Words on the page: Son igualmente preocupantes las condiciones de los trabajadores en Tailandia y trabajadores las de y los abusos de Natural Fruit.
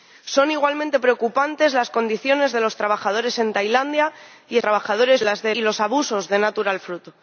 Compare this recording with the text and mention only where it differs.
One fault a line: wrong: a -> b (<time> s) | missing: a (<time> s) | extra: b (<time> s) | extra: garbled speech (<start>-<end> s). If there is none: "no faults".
no faults